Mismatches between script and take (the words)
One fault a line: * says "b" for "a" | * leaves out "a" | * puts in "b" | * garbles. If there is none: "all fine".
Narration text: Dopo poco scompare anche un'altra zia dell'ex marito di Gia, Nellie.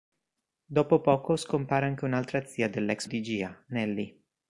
* leaves out "marito"